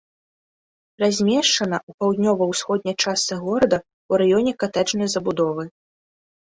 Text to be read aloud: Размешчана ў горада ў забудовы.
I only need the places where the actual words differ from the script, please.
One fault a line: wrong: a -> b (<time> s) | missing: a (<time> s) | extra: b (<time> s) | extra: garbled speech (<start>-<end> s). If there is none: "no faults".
extra: паўднёва ўсходняй частцы (2.0 s)
extra: раёне катэджнай (4.2 s)